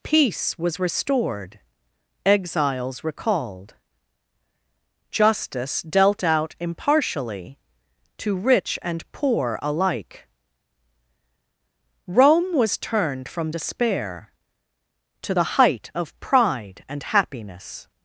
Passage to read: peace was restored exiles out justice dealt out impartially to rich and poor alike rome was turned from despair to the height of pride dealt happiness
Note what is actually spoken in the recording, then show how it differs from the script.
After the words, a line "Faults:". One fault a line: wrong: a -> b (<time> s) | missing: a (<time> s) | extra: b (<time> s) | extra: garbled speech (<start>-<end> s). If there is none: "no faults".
peace was restored exiles recalled justice dealt out impartially to rich and poor alike rome was turned from despair to the height of pride and happiness
Faults:
wrong: out -> recalled (3.0 s)
wrong: dealt -> and (16.9 s)